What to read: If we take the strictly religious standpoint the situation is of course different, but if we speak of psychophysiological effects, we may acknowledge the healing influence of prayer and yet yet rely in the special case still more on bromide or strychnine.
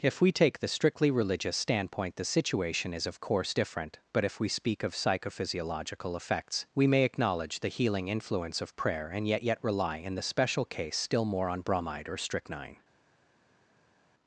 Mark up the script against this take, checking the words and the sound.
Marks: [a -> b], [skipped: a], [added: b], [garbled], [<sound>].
If we take the strictly religious standpoint the situation is of course different, but if we speak of psychophysiological effects, we may acknowledge the healing influence of prayer and yet yet rely in the special case still more on bromide or strychnine.